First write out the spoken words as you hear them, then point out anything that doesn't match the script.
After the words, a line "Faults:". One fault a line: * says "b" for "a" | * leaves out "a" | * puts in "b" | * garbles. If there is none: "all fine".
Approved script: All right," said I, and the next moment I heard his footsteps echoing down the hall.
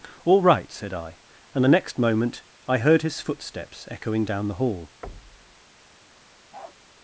All right," said I, and the next moment I heard his footsteps echoing down the hall.
Faults:
all fine